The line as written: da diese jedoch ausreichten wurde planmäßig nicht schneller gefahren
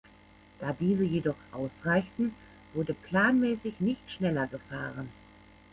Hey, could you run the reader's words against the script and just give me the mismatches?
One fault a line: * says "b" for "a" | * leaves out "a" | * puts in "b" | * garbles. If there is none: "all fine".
all fine